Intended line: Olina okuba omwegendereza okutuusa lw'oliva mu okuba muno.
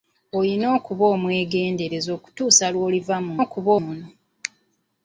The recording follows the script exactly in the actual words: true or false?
true